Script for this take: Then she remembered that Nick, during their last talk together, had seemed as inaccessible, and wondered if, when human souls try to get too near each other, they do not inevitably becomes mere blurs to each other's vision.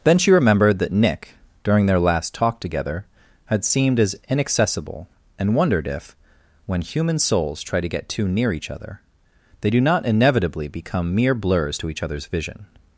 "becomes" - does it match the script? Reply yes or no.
no